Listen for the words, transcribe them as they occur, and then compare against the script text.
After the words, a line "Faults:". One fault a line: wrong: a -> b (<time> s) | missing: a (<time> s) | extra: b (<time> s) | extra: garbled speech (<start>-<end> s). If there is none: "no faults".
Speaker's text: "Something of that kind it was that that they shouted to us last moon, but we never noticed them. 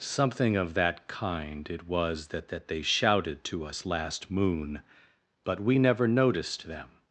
"Something of that kind it was that that they shouted to us last moon, but we never noticed them.
Faults:
no faults